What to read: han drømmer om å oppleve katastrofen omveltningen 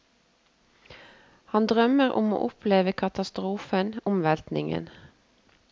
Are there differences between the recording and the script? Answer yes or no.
no